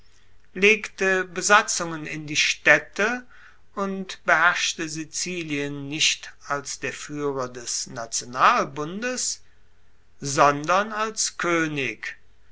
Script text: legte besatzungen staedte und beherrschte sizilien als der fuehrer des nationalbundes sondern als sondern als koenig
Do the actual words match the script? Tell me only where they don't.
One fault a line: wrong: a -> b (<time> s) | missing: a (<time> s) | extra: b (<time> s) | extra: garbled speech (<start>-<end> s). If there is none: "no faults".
extra: in die (2.1 s)
extra: nicht (5.9 s)
missing: sondern als (11.4 s)